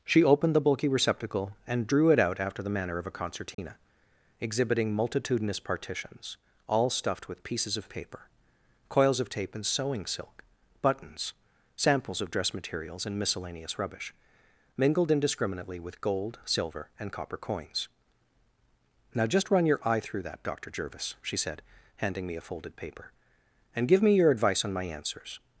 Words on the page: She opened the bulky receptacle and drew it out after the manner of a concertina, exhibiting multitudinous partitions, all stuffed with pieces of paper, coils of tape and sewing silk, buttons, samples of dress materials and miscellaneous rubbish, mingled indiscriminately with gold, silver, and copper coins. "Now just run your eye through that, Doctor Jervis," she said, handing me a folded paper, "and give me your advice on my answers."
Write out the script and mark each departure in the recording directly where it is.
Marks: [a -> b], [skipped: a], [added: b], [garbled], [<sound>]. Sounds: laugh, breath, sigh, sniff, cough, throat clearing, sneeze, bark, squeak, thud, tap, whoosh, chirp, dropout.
She opened the bulky receptacle and drew it out after the manner of a concertina, [dropout] exhibiting multitudinous partitions, all stuffed with pieces of paper, coils of tape and sewing silk, buttons, samples of dress materials and miscellaneous rubbish, mingled indiscriminately with gold, silver, and copper coins. "Now just run your eye through that, Doctor Jervis," she said, handing me a folded paper, "and give me your advice on my answers."